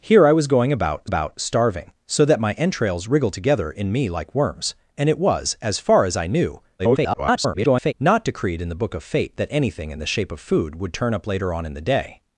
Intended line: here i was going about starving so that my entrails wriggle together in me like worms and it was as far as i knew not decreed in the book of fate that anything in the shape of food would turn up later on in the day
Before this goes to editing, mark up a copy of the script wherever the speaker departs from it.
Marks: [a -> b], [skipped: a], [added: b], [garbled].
here i was going about [added: about] starving so that my entrails wriggle together in me like worms and it was as far as i knew [garbled] not decreed in the book of fate that anything in the shape of food would turn up later on in the day